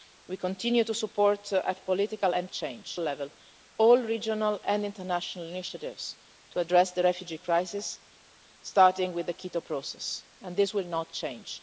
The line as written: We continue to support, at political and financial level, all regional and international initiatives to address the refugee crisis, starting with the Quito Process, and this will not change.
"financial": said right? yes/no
no